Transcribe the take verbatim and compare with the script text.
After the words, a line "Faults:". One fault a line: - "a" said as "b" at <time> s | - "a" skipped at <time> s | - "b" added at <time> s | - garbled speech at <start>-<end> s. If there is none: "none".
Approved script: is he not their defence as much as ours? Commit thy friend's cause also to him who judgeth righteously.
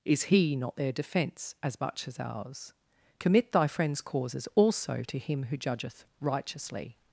is he not their defence as much as ours? Commit thy friend's causes also to him who judgeth righteously.
Faults:
- "cause" said as "causes" at 4.0 s